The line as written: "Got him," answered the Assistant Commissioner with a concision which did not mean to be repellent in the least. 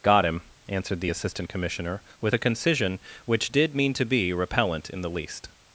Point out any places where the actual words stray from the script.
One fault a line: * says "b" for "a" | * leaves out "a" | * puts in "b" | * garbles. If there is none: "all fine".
* leaves out "not"